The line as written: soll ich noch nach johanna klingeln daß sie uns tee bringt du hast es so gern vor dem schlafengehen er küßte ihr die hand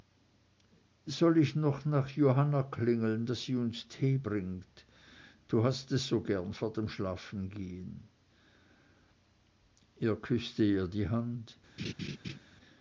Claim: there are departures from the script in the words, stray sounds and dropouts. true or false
true